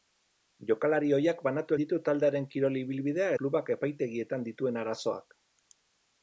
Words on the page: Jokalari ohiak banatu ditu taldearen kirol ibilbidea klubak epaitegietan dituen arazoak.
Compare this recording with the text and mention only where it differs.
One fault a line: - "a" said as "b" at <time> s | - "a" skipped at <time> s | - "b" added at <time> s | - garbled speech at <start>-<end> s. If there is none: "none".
none